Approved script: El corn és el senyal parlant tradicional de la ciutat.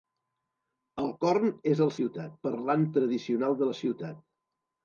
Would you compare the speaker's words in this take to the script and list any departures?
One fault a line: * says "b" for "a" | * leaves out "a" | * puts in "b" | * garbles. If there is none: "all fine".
* says "ciutat" for "senyal"